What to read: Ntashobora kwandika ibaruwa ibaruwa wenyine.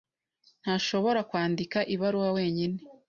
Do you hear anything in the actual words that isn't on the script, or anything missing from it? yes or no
yes